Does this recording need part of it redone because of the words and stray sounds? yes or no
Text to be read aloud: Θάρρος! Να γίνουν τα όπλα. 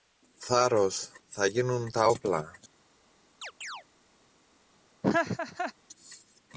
yes